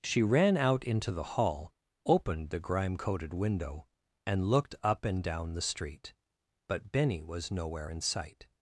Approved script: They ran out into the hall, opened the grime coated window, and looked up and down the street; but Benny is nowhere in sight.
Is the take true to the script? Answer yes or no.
no